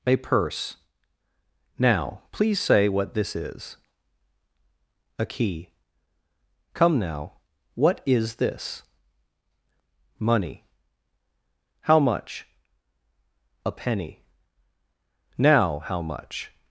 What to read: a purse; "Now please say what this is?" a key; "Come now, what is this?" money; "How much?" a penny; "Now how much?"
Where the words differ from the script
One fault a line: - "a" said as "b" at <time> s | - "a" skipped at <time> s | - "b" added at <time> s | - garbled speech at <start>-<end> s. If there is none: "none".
none